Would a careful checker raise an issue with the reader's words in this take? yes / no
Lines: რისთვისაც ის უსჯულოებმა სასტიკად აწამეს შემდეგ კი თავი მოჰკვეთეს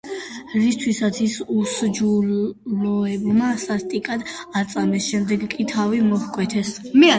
no